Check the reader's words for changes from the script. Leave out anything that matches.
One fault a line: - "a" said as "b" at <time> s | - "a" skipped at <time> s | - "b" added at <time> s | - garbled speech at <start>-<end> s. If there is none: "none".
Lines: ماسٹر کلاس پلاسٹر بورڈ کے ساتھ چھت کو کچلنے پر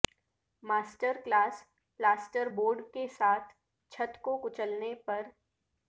none